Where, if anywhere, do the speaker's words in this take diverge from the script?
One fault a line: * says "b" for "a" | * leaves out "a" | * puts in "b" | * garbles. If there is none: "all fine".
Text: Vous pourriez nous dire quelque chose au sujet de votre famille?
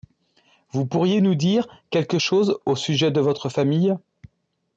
all fine